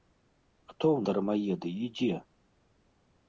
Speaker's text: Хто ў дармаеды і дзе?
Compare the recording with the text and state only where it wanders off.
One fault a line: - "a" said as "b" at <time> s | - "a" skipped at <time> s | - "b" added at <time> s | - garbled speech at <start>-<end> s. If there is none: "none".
none